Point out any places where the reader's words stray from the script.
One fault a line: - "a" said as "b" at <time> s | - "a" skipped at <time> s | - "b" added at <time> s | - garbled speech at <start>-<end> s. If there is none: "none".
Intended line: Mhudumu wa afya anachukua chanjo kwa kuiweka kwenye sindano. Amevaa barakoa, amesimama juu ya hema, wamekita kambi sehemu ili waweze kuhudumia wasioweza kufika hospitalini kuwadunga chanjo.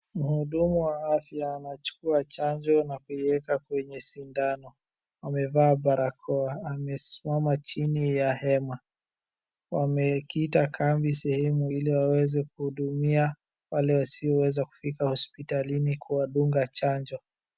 - "kwa" said as "na" at 2.8 s
- "juu" said as "chini" at 7.6 s
- "wale" added at 13.7 s